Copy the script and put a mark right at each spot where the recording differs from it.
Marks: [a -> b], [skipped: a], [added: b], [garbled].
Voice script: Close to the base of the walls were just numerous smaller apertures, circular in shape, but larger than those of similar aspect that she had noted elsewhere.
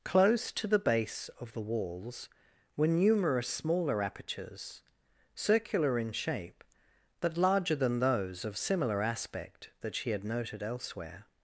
Close to the base of the walls were [skipped: just] numerous smaller apertures, circular in shape, but larger than those of similar aspect that she had noted elsewhere.